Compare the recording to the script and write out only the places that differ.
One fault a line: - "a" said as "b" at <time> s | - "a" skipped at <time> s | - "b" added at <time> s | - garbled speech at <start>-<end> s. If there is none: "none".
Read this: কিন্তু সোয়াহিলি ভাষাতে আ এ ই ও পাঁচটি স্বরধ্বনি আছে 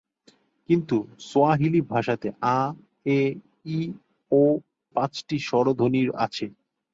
none